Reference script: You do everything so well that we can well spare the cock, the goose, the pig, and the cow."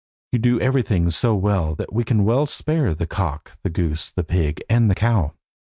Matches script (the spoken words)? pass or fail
pass